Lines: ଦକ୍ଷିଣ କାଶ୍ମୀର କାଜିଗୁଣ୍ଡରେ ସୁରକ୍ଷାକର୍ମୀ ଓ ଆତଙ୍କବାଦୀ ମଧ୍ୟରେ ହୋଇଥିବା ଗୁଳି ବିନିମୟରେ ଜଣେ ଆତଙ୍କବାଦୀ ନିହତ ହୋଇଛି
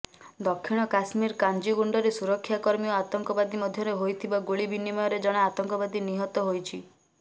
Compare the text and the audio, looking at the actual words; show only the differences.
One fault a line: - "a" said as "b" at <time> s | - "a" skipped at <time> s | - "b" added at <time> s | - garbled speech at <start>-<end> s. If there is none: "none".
none